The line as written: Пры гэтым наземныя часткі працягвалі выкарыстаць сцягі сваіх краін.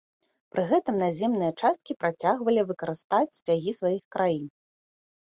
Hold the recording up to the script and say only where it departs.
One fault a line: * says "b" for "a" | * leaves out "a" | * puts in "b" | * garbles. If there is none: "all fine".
all fine